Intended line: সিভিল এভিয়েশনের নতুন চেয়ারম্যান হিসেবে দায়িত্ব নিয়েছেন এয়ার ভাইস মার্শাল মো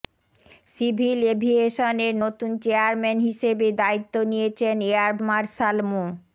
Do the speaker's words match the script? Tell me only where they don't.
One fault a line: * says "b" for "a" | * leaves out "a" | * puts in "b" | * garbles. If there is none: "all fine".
* leaves out "ভাইস"